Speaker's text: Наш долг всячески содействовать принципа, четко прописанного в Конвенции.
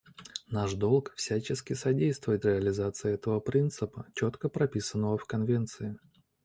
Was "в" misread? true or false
false